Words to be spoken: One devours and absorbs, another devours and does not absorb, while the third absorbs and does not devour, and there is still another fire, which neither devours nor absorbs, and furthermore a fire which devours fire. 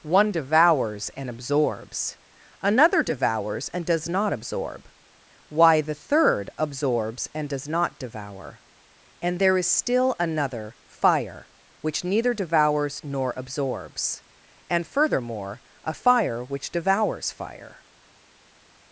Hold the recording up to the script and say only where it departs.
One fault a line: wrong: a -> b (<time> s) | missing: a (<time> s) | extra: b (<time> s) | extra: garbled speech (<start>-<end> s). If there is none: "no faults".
wrong: while -> why (5.5 s)